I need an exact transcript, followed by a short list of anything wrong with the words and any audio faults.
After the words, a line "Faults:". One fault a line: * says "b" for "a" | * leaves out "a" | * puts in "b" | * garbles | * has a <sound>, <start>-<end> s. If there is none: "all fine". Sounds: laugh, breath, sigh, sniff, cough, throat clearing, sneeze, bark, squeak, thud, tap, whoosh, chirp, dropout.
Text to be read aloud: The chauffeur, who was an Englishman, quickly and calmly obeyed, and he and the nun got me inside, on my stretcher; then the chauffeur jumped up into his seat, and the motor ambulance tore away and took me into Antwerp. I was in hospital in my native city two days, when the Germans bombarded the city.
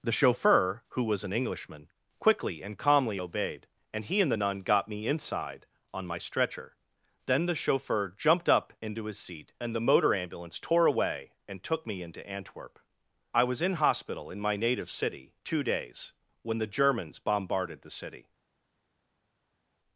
The chauffeur, who was an Englishman, quickly and calmly obeyed, and he and the nun got me inside, on my stretcher; then the chauffeur jumped up into his seat, and the motor ambulance tore away and took me into Antwerp. I was in hospital in my native city two days, when the Germans bombarded the city.
Faults:
all fine